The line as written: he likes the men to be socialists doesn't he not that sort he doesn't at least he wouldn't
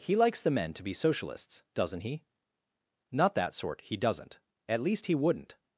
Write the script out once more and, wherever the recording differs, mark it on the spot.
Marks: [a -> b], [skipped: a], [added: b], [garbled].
he likes the men to be socialists doesn't he not that sort he doesn't at least he wouldn't